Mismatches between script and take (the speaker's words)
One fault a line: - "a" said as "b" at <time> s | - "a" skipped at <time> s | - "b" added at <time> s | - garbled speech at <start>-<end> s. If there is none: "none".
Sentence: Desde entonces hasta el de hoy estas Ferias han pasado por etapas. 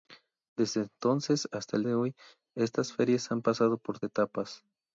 none